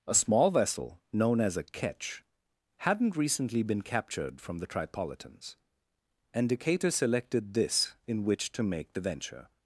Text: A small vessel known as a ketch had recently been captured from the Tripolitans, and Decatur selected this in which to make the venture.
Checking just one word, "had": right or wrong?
wrong